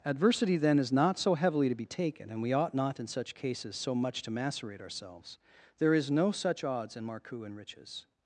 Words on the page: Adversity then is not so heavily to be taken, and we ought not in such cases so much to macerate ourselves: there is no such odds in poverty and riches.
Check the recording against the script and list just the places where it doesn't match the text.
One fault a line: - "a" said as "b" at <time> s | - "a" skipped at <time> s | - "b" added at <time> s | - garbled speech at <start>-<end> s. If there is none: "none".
- "poverty" said as "marcou" at 7.0 s